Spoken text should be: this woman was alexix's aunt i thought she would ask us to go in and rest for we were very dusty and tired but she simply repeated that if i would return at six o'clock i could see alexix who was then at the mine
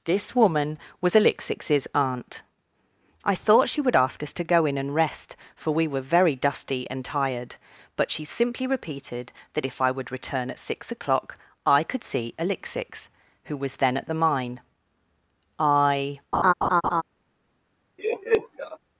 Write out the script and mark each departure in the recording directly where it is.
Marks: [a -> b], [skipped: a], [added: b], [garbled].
this woman was alexix's aunt i thought she would ask us to go in and rest for we were very dusty and tired but she simply repeated that if i would return at six o'clock i could see alexix who was then at the mine [added: i]